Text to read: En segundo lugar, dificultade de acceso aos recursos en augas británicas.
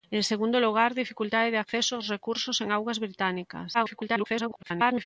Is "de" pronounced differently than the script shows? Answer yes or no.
no